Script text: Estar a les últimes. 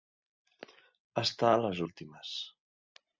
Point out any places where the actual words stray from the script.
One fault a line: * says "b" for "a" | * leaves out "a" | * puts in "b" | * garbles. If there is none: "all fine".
all fine